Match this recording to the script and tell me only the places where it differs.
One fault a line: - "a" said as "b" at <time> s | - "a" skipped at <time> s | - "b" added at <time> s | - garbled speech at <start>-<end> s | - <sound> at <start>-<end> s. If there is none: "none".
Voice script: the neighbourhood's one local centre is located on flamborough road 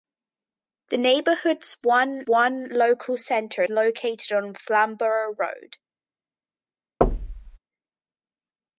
- "one" added at 2.3 s
- "is" skipped at 3.6 s
- thud at 7.0-7.6 s